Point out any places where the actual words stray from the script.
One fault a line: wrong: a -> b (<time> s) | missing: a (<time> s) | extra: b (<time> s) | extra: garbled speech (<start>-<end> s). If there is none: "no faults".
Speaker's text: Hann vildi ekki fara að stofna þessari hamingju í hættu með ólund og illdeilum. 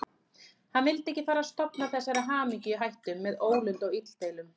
no faults